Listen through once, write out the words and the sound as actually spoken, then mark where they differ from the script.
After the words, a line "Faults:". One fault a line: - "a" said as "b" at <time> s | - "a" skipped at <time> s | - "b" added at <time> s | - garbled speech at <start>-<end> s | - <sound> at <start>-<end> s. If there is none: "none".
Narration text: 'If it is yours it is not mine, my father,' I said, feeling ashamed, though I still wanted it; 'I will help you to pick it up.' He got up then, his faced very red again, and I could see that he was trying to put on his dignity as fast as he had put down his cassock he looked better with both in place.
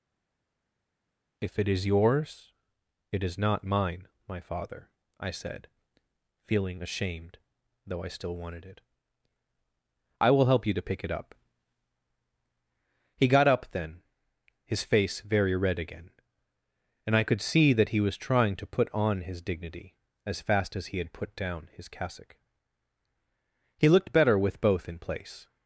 'If it is yours it is not mine, my father,' I said, feeling ashamed, though I still wanted it; 'I will help you to pick it up.' He got up then, his face very red again, and I could see that he was trying to put on his dignity as fast as he had put down his cassock he looked better with both in place.
Faults:
- "faced" said as "face" at 14.8 s